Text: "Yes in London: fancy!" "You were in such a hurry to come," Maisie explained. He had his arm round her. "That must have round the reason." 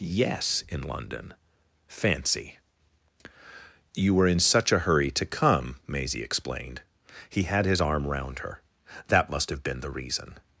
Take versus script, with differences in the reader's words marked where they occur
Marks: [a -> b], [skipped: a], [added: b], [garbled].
"Yes in London: fancy!" "You were in such a hurry to come," Maisie explained. He had his arm round her. "That must have [round -> been] the reason."